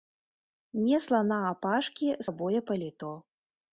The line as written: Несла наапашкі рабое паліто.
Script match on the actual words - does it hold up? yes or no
yes